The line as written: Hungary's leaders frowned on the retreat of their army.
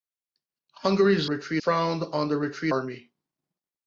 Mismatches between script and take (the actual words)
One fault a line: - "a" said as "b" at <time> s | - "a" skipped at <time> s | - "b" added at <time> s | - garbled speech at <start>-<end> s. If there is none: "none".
- "leaders" said as "retreat" at 1.2 s
- "of their" skipped at 2.7 s